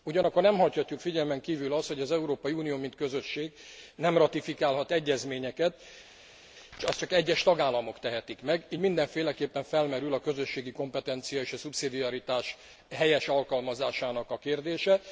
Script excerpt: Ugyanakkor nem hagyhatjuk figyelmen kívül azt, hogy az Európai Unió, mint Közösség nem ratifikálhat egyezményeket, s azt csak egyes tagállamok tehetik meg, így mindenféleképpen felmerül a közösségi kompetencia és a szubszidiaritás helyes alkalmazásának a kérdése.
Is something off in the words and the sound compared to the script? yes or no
no